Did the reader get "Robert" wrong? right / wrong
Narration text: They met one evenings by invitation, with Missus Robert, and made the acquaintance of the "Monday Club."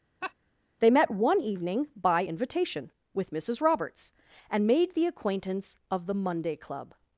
wrong